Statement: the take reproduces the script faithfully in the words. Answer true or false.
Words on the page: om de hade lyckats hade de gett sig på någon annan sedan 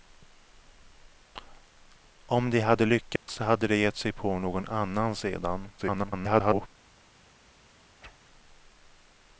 false